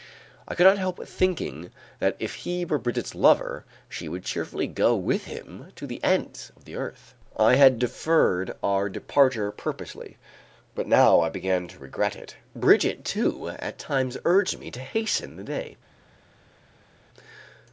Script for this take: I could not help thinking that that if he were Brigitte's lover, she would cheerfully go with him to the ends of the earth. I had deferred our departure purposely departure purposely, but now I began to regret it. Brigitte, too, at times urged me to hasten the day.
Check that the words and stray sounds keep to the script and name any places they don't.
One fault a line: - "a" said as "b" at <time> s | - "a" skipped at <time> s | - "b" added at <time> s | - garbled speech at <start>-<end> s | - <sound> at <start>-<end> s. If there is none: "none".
- "that" skipped at 2.1 s
- "departure purposely" skipped at 10.2 s